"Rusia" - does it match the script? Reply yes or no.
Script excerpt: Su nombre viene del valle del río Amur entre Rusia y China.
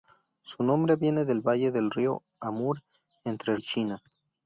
no